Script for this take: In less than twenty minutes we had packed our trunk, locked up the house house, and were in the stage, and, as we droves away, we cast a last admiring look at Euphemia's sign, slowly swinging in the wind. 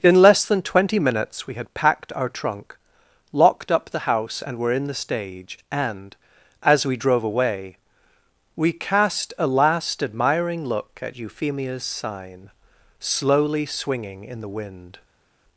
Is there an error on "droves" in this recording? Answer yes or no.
yes